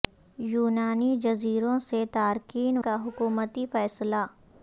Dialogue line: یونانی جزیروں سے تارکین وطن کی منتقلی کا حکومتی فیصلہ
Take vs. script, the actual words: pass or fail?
fail